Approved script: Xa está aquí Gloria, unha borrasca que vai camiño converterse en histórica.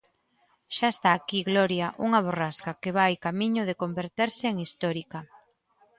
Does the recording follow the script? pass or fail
fail